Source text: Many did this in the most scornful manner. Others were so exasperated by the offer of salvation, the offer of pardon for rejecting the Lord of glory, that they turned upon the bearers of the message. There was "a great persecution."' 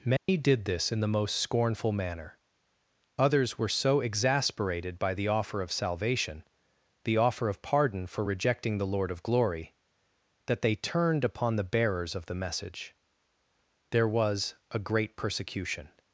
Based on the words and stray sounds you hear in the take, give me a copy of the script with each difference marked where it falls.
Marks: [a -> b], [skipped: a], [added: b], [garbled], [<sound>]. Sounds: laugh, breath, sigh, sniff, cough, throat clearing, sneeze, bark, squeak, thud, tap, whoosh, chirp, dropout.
Many [dropout] did this in the most scornful manner. Others were so exasperated by the offer of salvation, the offer of pardon for rejecting the Lord of glory, that they turned upon the bearers of the message. There was "a great persecution."'